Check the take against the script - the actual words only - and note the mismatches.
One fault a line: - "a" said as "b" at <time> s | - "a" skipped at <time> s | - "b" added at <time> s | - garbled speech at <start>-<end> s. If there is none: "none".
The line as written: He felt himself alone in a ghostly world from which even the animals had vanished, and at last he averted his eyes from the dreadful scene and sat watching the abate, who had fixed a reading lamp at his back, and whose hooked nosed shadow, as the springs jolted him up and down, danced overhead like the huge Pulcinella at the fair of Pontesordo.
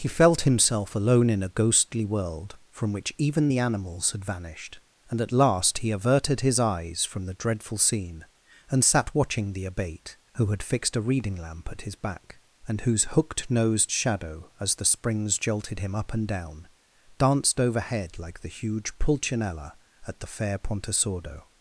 - "of" skipped at 20.6 s